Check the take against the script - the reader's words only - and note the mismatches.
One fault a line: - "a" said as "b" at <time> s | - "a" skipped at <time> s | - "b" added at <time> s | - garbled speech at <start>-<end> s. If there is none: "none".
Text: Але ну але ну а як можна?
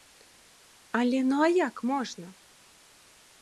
- "але ну" skipped at 1.4 s